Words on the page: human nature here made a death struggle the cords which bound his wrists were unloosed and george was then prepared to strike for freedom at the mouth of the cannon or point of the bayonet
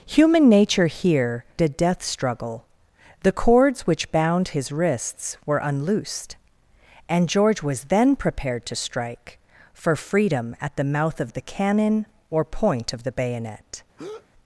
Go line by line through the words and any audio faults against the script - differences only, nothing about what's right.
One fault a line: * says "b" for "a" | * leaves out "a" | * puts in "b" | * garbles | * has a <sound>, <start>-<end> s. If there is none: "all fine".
* leaves out "made"
* has a breath, 14.0-14.3 s